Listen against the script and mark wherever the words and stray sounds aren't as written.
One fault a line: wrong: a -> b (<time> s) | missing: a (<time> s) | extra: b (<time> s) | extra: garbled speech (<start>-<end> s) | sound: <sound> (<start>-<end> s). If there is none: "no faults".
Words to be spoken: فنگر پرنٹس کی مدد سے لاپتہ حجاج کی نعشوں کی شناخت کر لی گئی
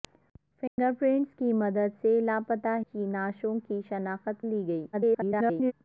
sound: dropout (0.7-0.8 s)
missing: حجاج (2.8 s)
missing: کر (4.5 s)
extra: garbled speech (4.9-5.7 s)